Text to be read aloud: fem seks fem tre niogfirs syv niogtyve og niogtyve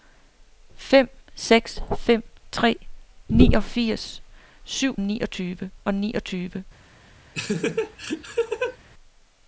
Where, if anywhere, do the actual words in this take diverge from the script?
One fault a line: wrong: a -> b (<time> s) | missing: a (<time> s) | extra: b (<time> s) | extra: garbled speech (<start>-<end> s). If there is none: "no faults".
no faults